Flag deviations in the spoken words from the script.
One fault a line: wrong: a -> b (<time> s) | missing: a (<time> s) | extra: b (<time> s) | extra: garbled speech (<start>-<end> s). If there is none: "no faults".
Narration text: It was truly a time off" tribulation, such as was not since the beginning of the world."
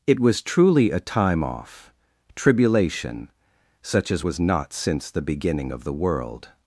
no faults